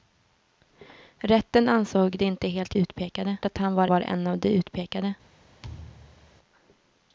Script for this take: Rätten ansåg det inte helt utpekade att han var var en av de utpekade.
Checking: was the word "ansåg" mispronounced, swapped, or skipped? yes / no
no